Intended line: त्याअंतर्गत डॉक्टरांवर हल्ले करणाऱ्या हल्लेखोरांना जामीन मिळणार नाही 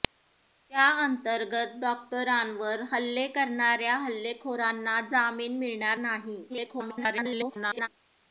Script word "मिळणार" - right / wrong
right